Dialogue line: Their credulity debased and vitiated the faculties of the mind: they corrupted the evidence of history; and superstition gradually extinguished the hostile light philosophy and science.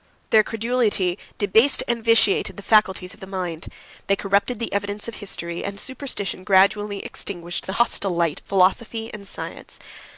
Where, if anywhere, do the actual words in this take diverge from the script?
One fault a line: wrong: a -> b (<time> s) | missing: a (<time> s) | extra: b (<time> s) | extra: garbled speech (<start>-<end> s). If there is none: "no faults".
no faults